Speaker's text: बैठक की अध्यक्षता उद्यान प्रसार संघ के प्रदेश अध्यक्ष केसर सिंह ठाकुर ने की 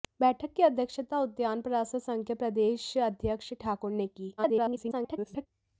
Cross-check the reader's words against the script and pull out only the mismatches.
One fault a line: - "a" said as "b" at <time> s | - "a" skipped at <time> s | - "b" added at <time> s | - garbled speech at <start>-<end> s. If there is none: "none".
- "केसर सिंह" skipped at 3.5 s
- garbled speech at 4.4-5.5 s